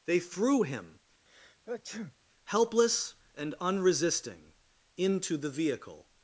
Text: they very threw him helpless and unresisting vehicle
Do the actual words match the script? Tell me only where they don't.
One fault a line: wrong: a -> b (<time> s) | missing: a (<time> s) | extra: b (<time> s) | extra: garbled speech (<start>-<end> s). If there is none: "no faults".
missing: very (0.2 s)
extra: into the (5.0 s)